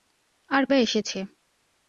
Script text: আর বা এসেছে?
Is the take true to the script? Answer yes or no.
yes